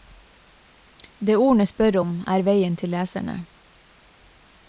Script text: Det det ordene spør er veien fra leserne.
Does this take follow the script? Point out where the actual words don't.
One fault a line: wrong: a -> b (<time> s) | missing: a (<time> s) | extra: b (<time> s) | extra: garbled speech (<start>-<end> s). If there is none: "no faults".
missing: det (1.4 s)
extra: om (2.0 s)
wrong: fra -> til (2.8 s)